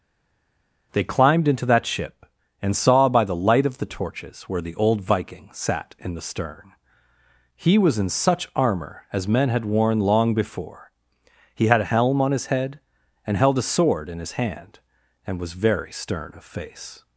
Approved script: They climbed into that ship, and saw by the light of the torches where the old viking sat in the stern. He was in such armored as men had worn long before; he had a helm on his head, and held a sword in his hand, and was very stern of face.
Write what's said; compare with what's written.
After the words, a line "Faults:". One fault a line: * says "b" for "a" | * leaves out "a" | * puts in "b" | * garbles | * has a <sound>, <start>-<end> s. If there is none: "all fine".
They climbed into that ship, and saw by the light of the torches where the old viking sat in the stern. He was in such armor as men had worn long before; he had a helm on his head, and held a sword in his hand, and was very stern of face.
Faults:
* says "armor" for "armored"